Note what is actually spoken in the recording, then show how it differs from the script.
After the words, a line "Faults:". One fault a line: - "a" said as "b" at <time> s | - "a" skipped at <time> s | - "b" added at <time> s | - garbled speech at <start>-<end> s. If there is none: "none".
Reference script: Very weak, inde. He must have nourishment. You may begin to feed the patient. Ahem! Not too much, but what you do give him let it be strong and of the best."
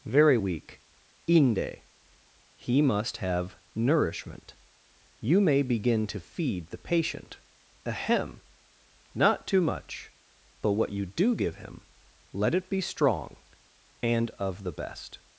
Very weak, inde. He must have nourishment. You may begin to feed the patient. Ahem! Not too much, but what you do give him let it be strong and of the best."
Faults:
none